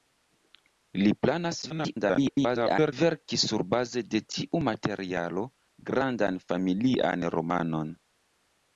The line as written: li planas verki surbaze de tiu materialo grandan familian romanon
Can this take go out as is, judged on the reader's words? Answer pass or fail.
fail